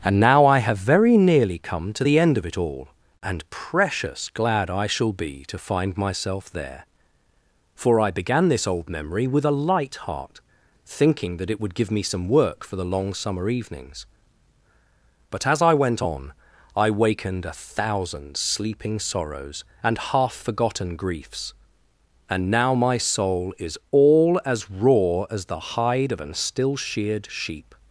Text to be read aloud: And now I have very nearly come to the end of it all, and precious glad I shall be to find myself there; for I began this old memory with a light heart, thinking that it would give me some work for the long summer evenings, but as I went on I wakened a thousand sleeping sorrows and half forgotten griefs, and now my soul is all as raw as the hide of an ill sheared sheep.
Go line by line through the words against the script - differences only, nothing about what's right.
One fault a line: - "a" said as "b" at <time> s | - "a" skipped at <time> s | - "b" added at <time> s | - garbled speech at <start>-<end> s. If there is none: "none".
- "ill" said as "still" at 26.3 s